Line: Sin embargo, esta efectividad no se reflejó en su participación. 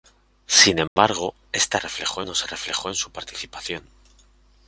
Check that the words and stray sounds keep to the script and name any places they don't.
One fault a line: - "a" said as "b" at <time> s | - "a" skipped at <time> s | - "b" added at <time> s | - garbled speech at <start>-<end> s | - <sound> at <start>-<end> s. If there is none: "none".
- dropout at 0.9-1.0 s
- "efectividad" said as "reflejó" at 1.8 s